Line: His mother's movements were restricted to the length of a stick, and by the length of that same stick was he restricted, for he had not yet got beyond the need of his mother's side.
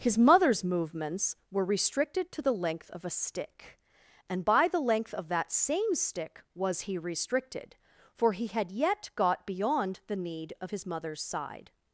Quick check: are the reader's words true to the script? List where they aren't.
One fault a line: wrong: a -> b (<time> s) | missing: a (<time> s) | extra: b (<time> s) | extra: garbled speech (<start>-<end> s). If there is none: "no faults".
missing: not (8.7 s)